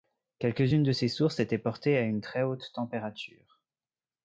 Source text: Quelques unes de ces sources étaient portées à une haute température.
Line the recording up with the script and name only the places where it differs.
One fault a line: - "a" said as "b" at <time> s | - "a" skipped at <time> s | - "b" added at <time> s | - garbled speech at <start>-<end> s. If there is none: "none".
- "très" added at 2.2 s